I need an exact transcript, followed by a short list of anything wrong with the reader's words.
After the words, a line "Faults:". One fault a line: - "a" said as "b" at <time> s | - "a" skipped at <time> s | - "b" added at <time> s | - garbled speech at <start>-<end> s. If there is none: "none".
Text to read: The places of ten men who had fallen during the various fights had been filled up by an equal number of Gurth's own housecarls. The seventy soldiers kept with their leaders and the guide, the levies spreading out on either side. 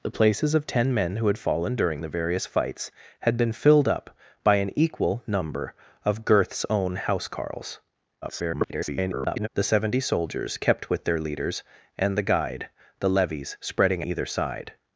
The places of ten men who had fallen during the various fights had been filled up by an equal number of Gurth's own housecarls. [garbled] The seventy soldiers kept with their leaders and the guide, the levies spreading either side.
Faults:
- garbled speech at 8.2-9.5 s
- "out on" skipped at 14.0 s